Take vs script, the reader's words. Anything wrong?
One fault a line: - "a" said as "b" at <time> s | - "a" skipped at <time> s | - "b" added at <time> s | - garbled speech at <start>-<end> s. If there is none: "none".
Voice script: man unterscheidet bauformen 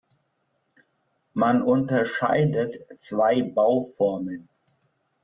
- "zwei" added at 3.0 s